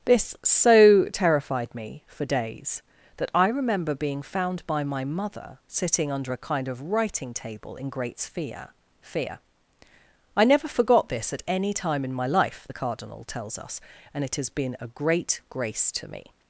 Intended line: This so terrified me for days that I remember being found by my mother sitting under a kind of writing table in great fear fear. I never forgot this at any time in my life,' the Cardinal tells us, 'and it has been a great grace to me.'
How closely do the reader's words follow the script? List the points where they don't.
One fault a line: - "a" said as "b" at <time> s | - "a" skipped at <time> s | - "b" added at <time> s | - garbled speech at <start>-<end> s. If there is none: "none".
none